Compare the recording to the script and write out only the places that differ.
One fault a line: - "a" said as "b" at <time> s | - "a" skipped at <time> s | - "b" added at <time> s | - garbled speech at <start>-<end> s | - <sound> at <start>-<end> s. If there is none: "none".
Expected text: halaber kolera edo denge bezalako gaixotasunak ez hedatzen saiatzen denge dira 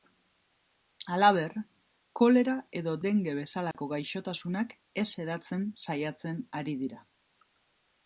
- dropout at 3.7-3.7 s
- "denge" said as "ari" at 6.6 s